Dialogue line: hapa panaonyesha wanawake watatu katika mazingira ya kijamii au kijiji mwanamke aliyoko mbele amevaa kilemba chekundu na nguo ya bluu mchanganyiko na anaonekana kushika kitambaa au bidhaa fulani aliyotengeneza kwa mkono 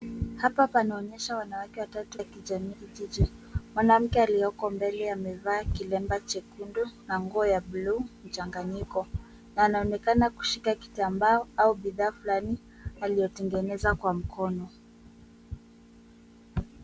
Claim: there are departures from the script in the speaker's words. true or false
true